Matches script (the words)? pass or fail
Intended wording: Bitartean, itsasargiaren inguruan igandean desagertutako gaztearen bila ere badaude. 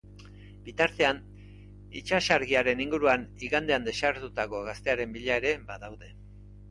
pass